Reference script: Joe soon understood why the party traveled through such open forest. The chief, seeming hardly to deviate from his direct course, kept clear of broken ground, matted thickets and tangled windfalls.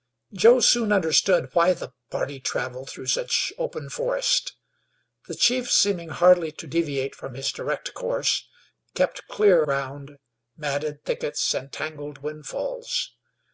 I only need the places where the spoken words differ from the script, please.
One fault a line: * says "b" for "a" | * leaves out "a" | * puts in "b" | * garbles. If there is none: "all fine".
* leaves out "of broken"